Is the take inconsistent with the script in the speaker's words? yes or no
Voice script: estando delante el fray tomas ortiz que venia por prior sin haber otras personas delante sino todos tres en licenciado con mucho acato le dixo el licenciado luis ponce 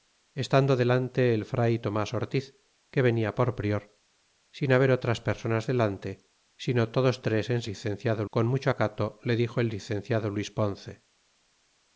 no